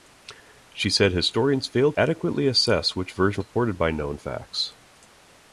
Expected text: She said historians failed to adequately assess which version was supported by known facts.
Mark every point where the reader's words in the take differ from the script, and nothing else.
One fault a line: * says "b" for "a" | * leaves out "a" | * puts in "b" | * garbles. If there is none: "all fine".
* leaves out "to"
* leaves out "was"